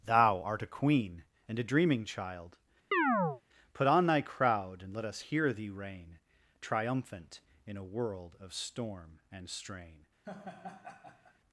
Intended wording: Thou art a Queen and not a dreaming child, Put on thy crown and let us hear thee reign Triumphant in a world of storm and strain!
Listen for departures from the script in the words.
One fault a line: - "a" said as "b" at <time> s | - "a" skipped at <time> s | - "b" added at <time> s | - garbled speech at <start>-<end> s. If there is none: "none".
- "not" skipped at 1.6 s
- "crown" said as "crowd" at 4.2 s